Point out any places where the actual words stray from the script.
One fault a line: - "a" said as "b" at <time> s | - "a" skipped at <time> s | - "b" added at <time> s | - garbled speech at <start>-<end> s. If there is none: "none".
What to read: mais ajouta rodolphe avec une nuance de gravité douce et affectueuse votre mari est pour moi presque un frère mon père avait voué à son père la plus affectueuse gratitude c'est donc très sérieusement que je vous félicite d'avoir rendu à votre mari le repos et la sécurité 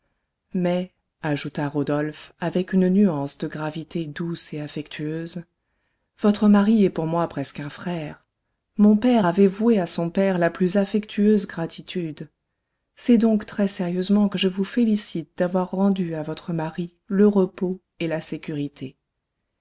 none